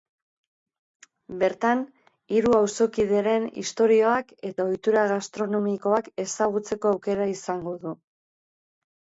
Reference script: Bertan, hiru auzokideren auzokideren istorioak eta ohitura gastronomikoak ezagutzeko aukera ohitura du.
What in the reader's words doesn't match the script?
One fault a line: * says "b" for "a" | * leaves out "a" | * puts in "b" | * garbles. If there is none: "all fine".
* leaves out "auzokideren"
* says "izango" for "ohitura"